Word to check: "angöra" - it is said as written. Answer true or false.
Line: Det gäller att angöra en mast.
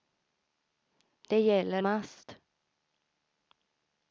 false